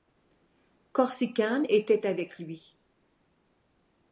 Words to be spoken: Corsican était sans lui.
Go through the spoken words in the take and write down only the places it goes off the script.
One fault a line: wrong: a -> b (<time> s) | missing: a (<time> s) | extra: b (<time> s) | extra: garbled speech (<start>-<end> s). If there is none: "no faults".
wrong: sans -> avec (2.1 s)